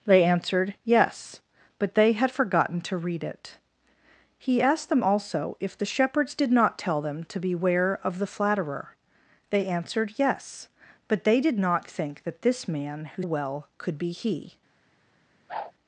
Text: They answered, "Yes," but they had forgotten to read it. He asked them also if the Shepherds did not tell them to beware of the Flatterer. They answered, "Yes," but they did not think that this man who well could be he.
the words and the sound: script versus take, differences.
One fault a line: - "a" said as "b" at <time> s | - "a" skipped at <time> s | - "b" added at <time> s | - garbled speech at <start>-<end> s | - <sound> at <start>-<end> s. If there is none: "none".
- whoosh at 15.5-15.7 s